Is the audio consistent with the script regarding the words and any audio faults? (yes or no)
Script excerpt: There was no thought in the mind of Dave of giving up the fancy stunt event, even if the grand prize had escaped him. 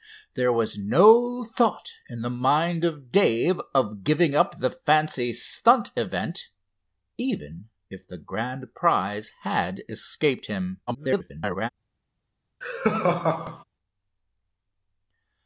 no